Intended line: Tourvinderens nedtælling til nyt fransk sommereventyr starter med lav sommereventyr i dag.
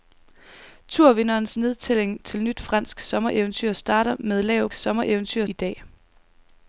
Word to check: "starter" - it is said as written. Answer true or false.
true